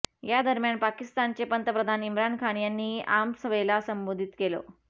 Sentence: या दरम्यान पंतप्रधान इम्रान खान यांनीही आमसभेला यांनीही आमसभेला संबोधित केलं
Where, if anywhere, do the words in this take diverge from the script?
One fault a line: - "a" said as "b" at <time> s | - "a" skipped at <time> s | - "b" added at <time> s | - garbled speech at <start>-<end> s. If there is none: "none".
- "पाकिस्तानचे" added at 0.8 s
- "यांनीही आमसभेला" skipped at 3.8 s